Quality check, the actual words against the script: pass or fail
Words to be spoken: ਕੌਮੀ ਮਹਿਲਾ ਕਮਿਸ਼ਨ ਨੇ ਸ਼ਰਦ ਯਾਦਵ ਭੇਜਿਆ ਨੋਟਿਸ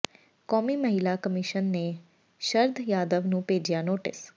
fail